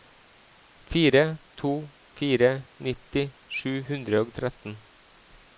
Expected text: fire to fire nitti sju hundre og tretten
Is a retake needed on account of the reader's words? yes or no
no